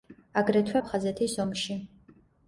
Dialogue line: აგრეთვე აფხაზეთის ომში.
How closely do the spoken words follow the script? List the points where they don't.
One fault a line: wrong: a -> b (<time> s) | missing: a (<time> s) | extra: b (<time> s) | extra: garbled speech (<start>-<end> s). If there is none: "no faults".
no faults